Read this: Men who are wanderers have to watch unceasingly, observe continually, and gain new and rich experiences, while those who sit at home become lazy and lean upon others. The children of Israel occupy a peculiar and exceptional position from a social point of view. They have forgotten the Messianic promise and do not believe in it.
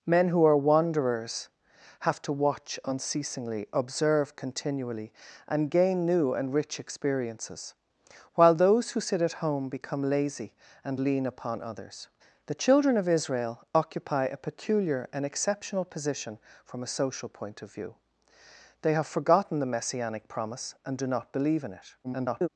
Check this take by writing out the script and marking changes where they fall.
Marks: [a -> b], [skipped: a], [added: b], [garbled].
Men who are wanderers have to watch unceasingly, observe continually, and gain new and rich experiences, while those who sit at home become lazy and lean upon others. The children of Israel occupy a peculiar and exceptional position from a social point of view. They have forgotten the Messianic promise and do not believe in it. [garbled]